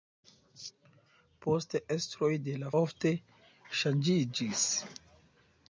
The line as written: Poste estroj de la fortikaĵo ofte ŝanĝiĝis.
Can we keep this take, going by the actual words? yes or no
no